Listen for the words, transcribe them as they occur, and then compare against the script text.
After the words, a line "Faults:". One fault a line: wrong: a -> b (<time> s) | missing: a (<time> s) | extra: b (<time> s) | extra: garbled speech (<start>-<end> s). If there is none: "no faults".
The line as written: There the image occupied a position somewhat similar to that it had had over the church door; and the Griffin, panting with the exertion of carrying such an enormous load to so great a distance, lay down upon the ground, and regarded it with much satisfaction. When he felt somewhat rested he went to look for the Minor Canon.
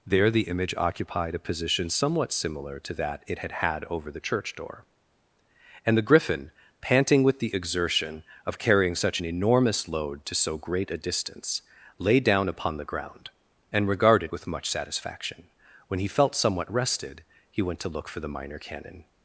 There the image occupied a position somewhat similar to that it had had over the church door; and the Griffin, panting with the exertion of carrying such an enormous load to so great a distance, lay down upon the ground, and regarded with much satisfaction. When he felt somewhat rested he went to look for the Minor Canon.
Faults:
missing: it (14.3 s)